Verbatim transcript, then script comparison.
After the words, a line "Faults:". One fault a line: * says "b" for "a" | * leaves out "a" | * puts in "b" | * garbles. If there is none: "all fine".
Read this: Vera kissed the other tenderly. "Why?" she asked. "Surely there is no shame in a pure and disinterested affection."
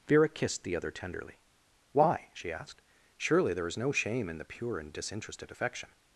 Vera kissed the other tenderly. "Why?" she asked. "Surely there is no shame in the pure and disinterested affection."
Faults:
* says "the" for "a"